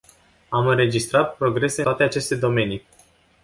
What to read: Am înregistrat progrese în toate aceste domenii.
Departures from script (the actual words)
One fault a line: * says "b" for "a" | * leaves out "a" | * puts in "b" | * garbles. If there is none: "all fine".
* leaves out "în"